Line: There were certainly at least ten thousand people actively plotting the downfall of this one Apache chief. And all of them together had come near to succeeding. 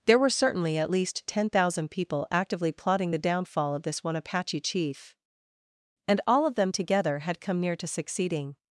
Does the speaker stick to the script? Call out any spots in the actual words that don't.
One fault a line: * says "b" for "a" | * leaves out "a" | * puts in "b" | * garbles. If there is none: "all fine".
all fine